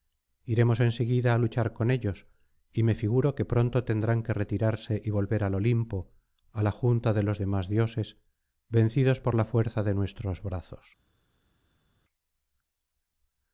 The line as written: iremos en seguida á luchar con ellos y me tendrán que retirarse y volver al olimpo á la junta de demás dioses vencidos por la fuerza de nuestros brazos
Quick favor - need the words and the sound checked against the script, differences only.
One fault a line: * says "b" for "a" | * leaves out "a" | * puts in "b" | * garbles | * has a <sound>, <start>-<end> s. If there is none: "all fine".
* puts in "figuro que pronto"
* puts in "los"